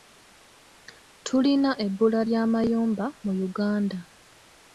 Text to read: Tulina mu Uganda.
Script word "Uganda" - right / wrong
right